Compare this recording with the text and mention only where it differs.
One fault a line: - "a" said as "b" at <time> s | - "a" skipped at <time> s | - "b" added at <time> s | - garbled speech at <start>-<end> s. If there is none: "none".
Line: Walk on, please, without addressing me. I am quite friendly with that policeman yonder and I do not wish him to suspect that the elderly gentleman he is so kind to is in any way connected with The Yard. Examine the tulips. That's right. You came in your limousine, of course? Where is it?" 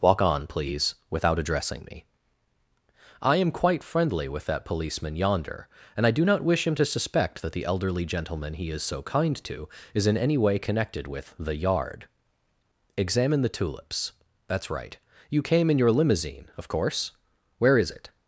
none